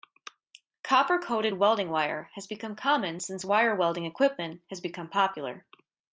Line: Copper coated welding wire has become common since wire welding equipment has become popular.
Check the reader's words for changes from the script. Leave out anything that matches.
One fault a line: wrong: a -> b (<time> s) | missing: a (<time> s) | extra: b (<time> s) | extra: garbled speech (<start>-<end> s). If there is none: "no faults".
no faults